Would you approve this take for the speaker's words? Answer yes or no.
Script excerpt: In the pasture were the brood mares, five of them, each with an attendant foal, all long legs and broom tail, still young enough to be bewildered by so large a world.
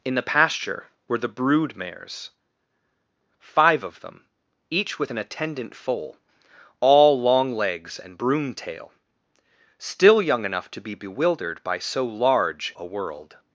yes